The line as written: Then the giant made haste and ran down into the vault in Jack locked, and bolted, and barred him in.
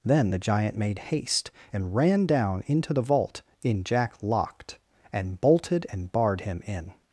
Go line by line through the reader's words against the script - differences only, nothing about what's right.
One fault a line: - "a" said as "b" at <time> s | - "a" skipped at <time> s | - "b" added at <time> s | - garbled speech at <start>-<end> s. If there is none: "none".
none